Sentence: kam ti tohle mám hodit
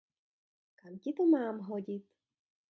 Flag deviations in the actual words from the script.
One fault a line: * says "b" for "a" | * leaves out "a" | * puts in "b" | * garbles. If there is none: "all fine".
* says "to" for "tohle"